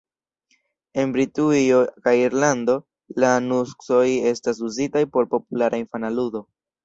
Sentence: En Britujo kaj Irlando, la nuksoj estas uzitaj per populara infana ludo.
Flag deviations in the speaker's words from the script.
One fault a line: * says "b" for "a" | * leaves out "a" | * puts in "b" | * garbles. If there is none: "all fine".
* says "por" for "per"